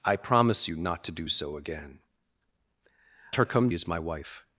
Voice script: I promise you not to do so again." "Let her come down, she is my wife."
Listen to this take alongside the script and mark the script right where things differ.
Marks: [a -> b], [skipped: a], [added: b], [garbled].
I promise you not to do so again." [skipped: "Let] her come [skipped: down, she] is my wife."